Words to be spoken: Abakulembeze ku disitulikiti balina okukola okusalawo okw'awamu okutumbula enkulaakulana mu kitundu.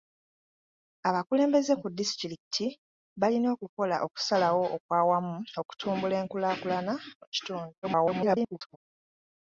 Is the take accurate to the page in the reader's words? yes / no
no